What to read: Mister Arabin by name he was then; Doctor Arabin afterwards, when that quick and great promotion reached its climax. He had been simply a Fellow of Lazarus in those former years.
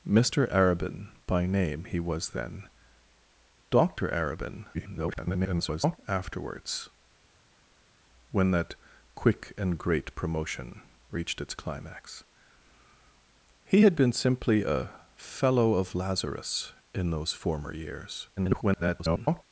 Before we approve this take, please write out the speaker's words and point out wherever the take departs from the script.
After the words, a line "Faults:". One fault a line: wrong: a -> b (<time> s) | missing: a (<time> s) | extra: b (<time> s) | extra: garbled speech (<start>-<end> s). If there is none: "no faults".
Mister Arabin by name he was then; Doctor Arabin [garbled] afterwards, when that quick and great promotion reached its climax. He had been simply a Fellow of Lazarus in those former years. [garbled]
Faults:
extra: garbled speech (4.7-6.0 s)
extra: garbled speech (18.4-19.4 s)